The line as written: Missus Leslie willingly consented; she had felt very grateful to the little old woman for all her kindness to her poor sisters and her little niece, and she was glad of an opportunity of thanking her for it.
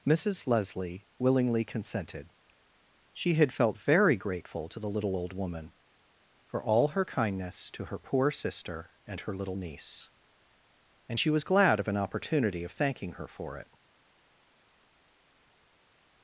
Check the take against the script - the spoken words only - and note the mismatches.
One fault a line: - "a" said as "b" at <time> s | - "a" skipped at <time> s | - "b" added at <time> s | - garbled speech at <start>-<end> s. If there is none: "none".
- "sisters" said as "sister" at 8.3 s